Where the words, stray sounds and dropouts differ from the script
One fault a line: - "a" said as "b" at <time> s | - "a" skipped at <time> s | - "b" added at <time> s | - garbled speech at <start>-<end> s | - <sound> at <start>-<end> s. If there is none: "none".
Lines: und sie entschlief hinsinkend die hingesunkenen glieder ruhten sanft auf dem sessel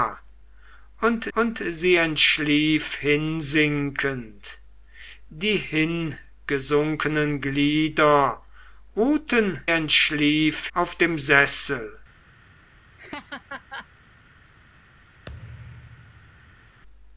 - "und" added at 1.3 s
- "sanft" said as "entschlief" at 9.6 s
- laugh at 13.0-13.9 s
- thud at 15.3-16.8 s